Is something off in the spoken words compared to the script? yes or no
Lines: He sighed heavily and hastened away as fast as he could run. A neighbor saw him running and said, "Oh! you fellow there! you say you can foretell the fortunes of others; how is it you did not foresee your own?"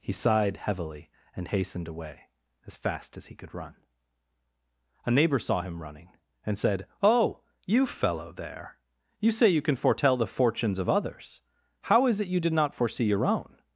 no